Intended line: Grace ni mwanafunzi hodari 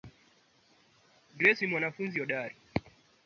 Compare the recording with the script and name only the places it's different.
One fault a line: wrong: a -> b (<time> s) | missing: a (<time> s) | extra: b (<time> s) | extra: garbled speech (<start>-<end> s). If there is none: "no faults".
no faults